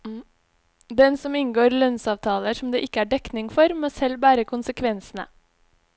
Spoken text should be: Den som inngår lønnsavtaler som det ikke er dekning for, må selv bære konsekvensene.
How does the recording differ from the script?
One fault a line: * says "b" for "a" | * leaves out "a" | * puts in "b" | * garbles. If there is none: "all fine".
all fine